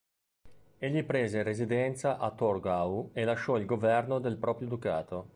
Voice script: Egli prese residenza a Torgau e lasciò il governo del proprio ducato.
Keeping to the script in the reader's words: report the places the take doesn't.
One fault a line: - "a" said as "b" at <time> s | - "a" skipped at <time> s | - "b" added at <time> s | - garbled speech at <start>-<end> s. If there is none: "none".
none